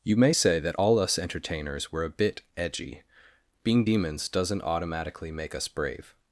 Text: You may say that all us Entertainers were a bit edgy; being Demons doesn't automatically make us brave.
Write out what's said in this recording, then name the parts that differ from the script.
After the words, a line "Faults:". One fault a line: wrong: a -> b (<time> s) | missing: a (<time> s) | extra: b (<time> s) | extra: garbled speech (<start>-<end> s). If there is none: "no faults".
You may say that all us Entertainers were a bit edgy; being Demons doesn't automatically make us brave.
Faults:
no faults